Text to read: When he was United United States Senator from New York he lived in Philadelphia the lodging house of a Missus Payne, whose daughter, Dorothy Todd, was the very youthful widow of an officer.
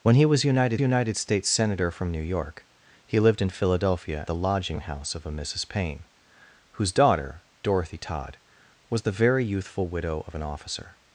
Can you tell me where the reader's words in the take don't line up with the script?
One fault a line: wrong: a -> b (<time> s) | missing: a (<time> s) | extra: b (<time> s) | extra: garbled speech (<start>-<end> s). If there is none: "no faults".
no faults